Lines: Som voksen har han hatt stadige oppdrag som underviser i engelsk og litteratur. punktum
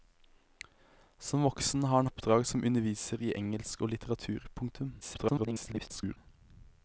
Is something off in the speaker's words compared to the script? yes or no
yes